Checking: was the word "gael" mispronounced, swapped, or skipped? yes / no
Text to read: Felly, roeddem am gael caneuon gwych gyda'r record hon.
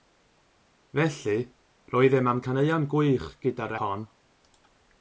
yes